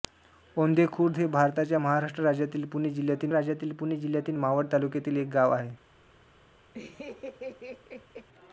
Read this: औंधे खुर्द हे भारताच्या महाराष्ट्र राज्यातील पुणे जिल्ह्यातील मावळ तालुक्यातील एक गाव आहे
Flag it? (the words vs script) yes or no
yes